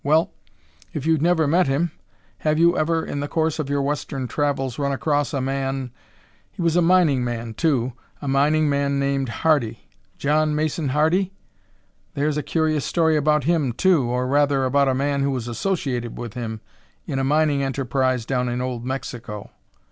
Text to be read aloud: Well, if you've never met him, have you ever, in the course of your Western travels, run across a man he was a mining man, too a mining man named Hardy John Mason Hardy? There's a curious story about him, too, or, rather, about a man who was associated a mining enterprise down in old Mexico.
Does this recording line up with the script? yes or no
no